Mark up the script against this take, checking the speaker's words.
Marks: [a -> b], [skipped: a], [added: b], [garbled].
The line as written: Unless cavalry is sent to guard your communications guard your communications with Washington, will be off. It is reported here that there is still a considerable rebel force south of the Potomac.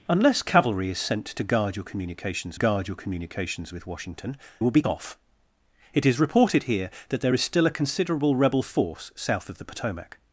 Unless cavalry is sent to guard your communications guard your communications with Washington, will be off. It is reported here that there is still a considerable rebel force south of the Potomac.